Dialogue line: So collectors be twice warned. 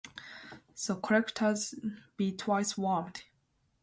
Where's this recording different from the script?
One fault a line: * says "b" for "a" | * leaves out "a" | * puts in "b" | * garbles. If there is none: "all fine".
all fine